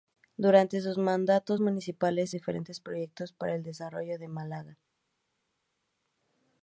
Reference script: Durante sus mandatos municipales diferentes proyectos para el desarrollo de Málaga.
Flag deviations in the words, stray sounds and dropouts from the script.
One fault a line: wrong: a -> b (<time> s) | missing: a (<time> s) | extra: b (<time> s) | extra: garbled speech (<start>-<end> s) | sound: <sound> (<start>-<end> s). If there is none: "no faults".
no faults